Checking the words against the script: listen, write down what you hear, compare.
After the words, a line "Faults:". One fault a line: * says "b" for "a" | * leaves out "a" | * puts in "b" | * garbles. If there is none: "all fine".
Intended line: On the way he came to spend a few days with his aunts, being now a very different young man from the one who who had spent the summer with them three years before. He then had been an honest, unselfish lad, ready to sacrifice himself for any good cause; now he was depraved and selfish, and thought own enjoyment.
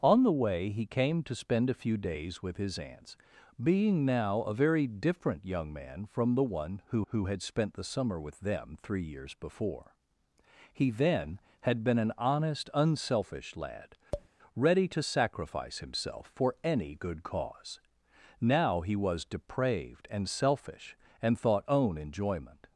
On the way he came to spend a few days with his aunts, being now a very different young man from the one who who had spent the summer with them three years before. He then had been an honest, unselfish lad, ready to sacrifice himself for any good cause; now he was depraved and selfish, and thought own enjoyment.
Faults:
all fine